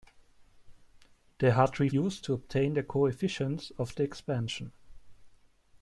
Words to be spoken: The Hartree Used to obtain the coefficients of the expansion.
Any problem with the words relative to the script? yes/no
no